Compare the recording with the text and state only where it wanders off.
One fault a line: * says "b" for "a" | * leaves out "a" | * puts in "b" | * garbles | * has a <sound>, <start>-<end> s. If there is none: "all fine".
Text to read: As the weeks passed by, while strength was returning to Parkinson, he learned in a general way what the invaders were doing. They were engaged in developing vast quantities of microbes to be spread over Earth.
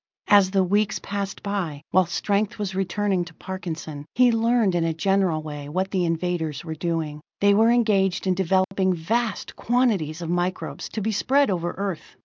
* has a dropout, 8.6-8.7 s